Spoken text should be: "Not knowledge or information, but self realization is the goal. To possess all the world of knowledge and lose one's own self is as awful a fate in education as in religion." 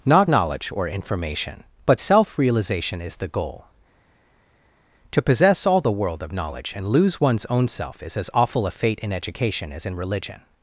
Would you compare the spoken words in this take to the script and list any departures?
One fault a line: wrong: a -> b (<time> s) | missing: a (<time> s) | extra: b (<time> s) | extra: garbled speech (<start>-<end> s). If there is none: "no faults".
no faults